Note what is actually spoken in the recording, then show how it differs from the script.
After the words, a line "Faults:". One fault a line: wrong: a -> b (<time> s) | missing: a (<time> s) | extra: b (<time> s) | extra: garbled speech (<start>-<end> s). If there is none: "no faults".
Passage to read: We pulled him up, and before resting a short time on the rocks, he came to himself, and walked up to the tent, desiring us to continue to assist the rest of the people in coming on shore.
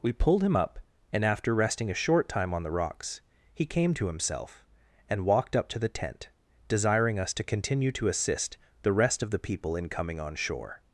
We pulled him up, and after resting a short time on the rocks, he came to himself, and walked up to the tent, desiring us to continue to assist the rest of the people in coming on shore.
Faults:
wrong: before -> after (1.3 s)